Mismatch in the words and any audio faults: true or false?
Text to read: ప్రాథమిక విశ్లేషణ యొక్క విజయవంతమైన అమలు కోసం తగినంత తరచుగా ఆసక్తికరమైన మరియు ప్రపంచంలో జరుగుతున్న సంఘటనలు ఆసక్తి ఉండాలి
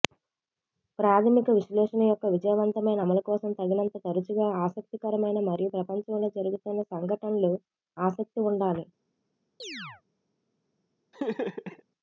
true